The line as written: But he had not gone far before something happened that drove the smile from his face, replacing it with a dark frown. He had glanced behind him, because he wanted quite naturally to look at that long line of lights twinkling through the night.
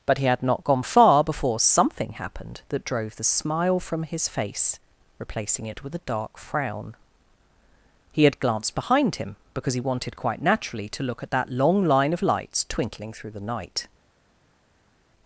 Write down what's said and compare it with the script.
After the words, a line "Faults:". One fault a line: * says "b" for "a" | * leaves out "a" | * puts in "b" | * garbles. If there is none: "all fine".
But he had not gone far before something happened that drove the smile from his face, replacing it with a dark frown. He had glanced behind him, because he wanted quite naturally to look at that long line of lights twinkling through the night.
Faults:
all fine